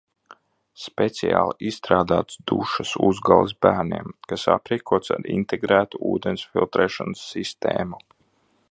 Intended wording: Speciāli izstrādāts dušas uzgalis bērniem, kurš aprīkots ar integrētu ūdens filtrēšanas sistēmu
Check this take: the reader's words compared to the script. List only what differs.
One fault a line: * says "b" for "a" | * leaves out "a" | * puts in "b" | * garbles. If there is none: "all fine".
* says "kas" for "kurš"